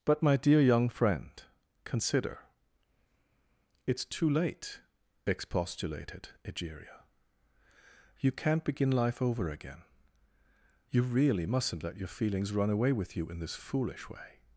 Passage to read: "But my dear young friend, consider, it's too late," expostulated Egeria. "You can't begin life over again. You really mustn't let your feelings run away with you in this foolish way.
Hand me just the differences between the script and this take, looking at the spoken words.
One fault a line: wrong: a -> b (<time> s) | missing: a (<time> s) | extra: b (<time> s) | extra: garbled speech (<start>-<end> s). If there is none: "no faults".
no faults